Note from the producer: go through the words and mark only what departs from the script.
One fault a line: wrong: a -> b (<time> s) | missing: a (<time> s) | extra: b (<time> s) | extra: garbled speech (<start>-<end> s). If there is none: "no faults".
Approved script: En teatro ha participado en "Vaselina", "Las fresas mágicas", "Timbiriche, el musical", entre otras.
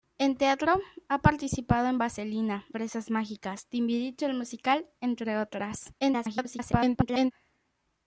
missing: Las (2.6 s)
extra: garbled speech (6.0-7.3 s)